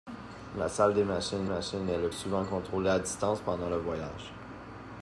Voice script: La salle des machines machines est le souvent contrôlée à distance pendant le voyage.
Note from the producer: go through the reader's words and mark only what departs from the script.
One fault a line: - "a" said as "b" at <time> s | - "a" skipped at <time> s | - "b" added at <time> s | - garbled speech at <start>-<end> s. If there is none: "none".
none